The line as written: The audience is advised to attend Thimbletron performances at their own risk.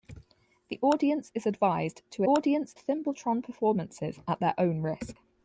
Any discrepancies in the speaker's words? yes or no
yes